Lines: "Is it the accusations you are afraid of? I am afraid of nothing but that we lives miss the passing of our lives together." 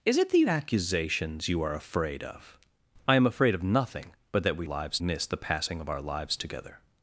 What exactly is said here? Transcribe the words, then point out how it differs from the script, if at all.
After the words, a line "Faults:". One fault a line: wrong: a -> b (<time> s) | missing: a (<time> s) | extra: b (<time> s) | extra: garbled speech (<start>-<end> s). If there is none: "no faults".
"Is it the accusations you are afraid of? I am afraid of nothing but that we lives miss the passing of our lives together."
Faults:
no faults